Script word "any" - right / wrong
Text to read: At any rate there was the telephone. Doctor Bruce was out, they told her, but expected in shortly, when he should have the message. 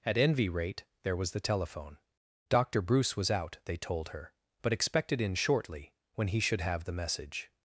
wrong